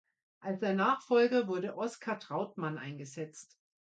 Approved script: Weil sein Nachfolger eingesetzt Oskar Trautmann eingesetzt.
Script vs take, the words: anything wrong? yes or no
yes